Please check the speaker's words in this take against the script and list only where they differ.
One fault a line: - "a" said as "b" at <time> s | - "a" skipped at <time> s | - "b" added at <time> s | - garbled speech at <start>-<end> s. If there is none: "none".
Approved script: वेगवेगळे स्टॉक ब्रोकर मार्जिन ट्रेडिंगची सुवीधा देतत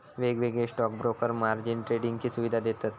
none